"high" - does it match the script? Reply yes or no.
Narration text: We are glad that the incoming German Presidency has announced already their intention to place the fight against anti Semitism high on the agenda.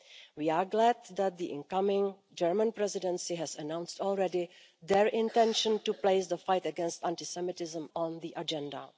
no